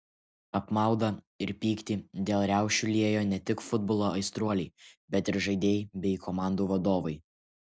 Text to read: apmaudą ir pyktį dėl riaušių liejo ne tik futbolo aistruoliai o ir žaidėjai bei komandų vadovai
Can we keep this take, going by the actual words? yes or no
no